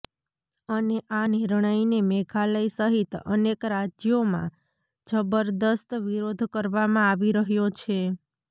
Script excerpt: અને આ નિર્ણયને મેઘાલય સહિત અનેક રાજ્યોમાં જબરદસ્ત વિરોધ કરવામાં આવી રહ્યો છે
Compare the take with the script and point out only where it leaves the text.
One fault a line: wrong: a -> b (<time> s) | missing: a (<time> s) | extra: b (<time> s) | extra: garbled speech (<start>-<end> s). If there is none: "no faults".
no faults